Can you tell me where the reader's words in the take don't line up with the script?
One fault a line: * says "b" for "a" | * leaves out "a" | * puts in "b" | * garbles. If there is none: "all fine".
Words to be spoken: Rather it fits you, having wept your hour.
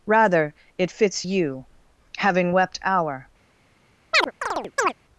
* leaves out "your"